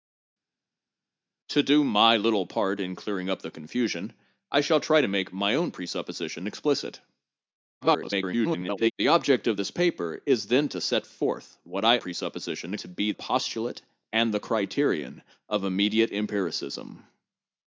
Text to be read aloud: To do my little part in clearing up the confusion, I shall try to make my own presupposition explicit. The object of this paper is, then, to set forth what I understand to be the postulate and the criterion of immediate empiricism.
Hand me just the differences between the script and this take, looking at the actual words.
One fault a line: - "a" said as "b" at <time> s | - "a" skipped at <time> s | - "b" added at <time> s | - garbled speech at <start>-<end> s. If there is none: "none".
- garbled speech at 7.8-8.9 s
- "understand" said as "presupposition" at 12.0 s
- "the" skipped at 13.1 s